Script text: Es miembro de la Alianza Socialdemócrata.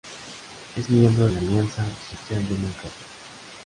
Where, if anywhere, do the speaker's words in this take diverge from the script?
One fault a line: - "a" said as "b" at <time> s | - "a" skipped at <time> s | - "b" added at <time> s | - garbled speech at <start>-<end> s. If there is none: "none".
- "de" skipped at 1.3 s